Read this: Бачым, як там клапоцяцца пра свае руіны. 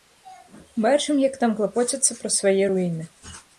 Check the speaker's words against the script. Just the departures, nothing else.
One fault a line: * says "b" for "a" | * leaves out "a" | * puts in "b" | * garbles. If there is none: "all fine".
all fine